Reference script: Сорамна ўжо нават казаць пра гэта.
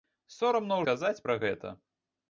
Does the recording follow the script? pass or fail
fail